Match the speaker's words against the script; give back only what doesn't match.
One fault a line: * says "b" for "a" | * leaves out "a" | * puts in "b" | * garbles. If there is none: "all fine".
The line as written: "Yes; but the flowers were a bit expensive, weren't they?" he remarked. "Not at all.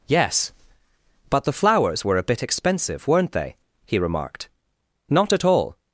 all fine